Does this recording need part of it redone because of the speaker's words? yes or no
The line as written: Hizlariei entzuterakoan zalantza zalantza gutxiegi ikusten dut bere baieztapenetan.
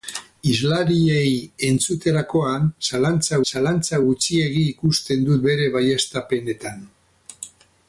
no